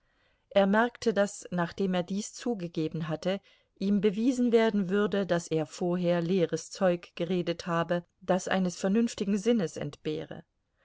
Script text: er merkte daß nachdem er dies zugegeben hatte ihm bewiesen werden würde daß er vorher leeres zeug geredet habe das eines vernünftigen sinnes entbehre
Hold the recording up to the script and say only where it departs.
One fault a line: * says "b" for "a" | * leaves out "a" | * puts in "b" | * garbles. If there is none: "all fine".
all fine